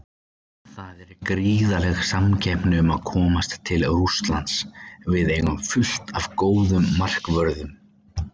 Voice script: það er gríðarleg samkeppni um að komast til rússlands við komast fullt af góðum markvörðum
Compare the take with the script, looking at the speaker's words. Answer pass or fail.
fail